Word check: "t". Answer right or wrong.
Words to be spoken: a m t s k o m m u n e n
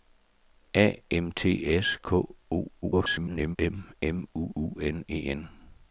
right